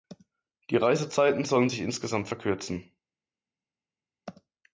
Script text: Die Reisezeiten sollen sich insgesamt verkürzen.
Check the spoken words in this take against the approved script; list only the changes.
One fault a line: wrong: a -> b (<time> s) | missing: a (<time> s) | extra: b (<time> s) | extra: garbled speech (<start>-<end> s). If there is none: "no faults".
no faults